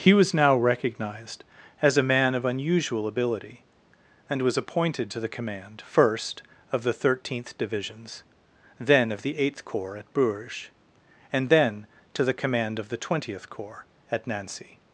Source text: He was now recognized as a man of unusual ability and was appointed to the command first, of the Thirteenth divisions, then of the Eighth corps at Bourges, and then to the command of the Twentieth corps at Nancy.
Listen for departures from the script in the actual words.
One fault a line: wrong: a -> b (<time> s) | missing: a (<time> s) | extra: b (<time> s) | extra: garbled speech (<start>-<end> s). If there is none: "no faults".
no faults